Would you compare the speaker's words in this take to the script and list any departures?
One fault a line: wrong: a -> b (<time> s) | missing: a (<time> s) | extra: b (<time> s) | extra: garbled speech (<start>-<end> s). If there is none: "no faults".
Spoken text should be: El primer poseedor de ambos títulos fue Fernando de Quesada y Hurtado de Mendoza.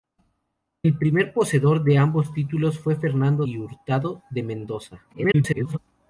missing: de Quesada (3.5 s)
extra: garbled speech (5.1-5.8 s)